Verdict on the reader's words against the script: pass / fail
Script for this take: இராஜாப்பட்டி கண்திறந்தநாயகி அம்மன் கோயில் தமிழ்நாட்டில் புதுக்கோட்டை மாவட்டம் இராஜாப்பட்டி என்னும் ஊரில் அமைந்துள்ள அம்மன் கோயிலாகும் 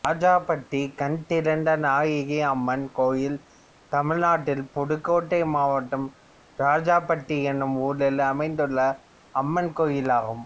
pass